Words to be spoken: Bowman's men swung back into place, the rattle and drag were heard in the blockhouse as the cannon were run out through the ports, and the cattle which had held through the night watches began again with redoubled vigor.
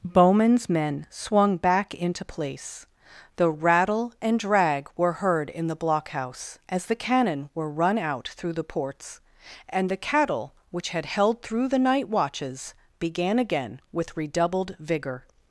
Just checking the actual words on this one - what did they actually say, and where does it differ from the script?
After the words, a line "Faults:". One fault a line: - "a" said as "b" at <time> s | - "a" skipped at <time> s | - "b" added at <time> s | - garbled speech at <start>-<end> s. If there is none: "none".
Bowman's men swung back into place, the rattle and drag were heard in the blockhouse as the cannon were run out through the ports, and the cattle which had held through the night watches began again with redoubled vigor.
Faults:
none